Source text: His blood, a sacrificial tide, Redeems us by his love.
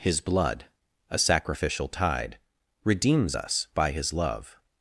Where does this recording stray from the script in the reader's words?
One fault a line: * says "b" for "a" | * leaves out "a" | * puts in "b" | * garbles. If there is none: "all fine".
all fine